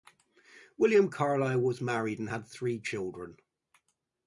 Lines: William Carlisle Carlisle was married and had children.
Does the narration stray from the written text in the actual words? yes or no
yes